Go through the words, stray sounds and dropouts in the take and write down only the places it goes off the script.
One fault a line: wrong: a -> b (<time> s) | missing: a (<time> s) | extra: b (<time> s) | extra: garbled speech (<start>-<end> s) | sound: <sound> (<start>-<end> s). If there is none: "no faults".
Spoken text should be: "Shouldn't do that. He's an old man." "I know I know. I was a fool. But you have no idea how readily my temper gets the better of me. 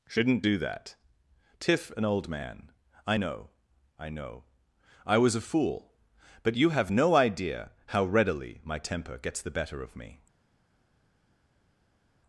wrong: He's -> Tiff (1.6 s)